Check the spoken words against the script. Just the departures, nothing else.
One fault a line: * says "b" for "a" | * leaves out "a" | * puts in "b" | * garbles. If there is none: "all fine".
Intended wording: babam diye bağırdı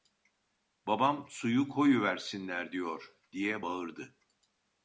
* puts in "suyu koyuversinler diyor"